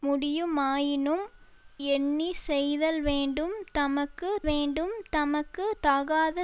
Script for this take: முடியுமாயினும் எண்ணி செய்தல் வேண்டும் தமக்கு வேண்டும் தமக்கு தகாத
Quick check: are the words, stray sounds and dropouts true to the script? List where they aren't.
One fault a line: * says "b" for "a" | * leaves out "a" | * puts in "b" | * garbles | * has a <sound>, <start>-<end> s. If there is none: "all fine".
all fine